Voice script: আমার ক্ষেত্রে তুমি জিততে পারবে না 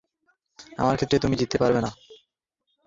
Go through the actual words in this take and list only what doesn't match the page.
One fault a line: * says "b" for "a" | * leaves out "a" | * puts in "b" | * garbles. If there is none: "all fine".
all fine